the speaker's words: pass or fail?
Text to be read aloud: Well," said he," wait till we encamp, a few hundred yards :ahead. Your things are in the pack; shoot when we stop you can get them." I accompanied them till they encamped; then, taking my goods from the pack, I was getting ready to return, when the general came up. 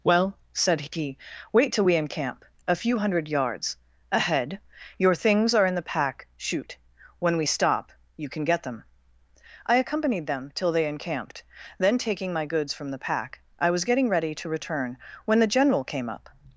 pass